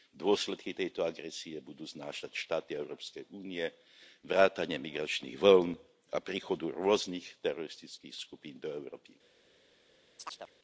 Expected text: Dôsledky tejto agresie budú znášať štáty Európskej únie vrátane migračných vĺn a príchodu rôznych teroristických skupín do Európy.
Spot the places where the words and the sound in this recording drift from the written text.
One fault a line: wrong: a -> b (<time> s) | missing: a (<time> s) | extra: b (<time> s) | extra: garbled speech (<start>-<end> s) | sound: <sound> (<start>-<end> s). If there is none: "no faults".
sound: chirp (10.2-10.5 s)